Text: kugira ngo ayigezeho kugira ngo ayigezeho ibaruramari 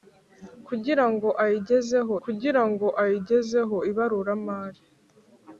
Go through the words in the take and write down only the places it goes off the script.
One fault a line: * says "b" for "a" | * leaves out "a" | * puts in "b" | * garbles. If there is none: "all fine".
all fine